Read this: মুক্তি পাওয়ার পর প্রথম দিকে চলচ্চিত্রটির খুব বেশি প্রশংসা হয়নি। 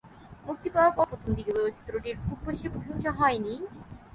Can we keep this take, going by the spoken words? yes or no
yes